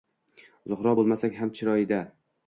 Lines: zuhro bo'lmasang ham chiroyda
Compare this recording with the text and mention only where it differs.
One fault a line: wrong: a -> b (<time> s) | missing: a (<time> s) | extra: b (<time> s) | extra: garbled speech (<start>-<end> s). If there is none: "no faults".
no faults